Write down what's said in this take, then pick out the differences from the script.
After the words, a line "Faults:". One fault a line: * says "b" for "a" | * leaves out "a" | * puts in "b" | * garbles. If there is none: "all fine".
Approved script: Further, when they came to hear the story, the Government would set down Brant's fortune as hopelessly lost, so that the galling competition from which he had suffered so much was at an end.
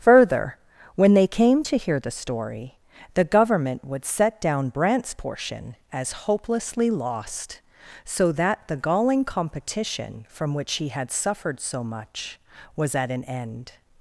Further, when they came to hear the story, the Government would set down Brant's portion as hopelessly lost, so that the galling competition from which he had suffered so much was at an end.
Faults:
* says "portion" for "fortune"